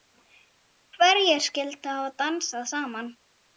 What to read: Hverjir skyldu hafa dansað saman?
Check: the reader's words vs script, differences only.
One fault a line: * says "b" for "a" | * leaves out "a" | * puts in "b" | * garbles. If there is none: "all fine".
all fine